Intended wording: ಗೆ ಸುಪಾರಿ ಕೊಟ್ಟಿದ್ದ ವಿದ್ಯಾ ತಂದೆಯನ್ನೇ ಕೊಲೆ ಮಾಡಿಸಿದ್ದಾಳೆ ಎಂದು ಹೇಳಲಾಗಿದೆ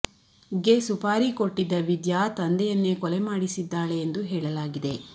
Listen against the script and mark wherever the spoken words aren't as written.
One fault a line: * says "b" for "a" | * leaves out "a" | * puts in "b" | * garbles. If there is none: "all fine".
all fine